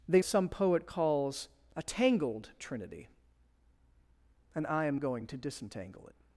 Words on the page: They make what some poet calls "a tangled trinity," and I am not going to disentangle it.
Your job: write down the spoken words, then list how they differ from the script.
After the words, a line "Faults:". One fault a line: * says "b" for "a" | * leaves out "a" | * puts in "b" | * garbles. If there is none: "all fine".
They some poet calls "a tangled trinity," and I am going to disentangle it.
Faults:
* leaves out "make what"
* leaves out "not"